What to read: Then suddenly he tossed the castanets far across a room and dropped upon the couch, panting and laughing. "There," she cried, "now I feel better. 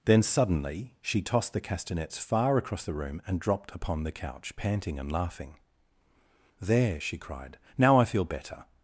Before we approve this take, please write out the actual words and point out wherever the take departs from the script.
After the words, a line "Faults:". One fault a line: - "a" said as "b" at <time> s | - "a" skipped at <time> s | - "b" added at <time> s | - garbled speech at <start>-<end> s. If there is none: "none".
Then suddenly she tossed the castanets far across the room and dropped upon the couch, panting and laughing. "There," she cried, "now I feel better.
Faults:
- "he" said as "she" at 1.0 s
- "a" said as "the" at 2.8 s